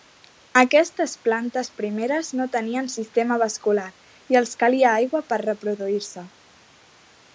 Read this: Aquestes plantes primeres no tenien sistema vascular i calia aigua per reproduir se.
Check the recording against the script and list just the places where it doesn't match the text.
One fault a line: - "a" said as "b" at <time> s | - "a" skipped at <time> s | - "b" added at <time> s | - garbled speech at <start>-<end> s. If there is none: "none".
- "els" added at 4.4 s